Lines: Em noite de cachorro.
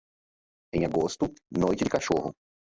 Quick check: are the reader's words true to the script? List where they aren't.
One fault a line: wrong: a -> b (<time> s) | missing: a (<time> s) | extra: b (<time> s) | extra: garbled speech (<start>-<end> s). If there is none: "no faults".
extra: agosto (0.8 s)